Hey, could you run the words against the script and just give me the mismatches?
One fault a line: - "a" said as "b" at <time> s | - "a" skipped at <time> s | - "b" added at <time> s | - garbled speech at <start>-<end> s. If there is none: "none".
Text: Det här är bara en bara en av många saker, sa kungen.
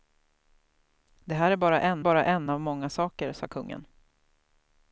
none